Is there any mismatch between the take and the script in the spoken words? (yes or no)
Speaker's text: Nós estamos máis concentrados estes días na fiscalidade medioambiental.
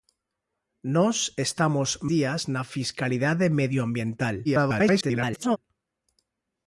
yes